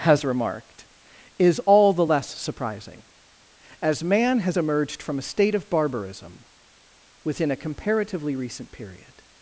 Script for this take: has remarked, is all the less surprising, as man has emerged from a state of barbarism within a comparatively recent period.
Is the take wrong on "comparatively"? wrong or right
right